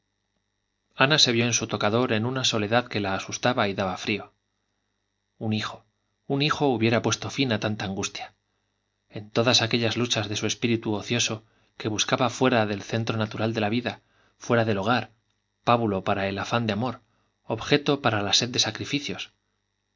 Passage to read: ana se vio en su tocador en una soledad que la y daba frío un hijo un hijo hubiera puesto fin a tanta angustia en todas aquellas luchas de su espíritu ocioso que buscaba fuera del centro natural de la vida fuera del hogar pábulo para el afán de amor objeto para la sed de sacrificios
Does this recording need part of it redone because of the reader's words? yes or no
yes